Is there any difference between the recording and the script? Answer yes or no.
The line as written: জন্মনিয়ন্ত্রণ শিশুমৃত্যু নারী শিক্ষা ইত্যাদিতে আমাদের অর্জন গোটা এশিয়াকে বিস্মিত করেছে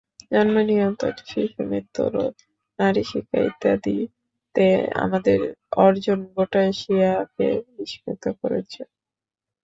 yes